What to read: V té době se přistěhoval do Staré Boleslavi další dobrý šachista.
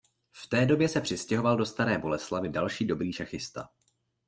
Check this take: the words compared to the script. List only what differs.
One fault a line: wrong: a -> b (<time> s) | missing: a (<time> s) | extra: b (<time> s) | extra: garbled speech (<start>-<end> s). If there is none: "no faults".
no faults